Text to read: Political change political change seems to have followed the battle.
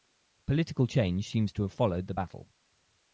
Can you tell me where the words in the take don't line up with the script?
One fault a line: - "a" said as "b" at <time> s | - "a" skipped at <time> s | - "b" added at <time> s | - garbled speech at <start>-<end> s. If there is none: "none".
- "political change" skipped at 1.3 s